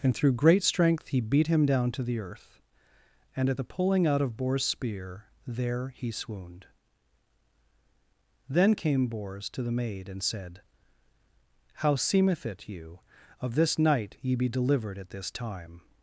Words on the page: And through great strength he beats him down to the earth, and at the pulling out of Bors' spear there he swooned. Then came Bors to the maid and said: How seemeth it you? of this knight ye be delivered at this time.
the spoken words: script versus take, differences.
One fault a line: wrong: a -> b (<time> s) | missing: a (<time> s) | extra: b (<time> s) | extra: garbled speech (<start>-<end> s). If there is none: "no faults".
wrong: beats -> beat (1.2 s)